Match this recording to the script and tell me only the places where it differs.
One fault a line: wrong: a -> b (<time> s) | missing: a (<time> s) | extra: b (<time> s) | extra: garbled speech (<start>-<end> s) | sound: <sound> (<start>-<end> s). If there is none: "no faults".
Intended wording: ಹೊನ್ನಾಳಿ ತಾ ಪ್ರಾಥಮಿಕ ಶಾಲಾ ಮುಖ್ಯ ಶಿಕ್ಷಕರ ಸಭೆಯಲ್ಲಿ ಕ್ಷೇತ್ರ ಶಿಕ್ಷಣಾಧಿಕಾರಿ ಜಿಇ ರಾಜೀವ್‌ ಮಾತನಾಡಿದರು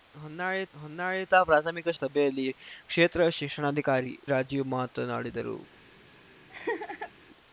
extra: ಹೊನ್ನಾಳಿ (0.7 s)
missing: ಶಾಲಾ ಮುಖ್ಯ ಶಿಕ್ಷಕರ (1.9 s)
missing: ಜಿಇ (4.1 s)
sound: laugh (6.5-7.1 s)